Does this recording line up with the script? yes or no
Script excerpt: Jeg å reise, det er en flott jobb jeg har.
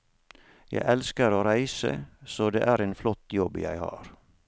no